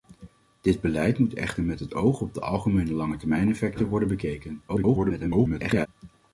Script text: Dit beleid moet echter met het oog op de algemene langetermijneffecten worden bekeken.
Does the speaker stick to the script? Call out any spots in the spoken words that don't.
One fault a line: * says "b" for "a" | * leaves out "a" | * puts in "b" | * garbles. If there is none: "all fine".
* garbles